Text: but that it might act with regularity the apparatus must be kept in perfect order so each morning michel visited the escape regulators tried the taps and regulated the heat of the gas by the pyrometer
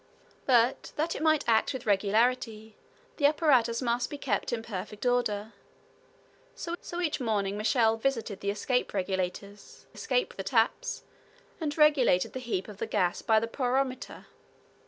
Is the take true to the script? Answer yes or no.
no